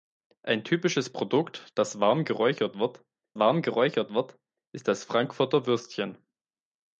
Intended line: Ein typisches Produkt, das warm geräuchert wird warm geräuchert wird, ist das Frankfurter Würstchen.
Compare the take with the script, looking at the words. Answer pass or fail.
pass